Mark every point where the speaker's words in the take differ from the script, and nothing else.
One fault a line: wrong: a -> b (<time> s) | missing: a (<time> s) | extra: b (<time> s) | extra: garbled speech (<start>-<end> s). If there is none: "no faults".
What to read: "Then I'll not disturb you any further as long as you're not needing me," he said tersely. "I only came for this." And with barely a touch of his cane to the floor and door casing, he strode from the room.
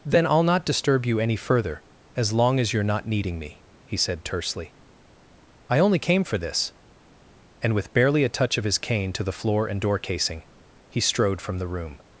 no faults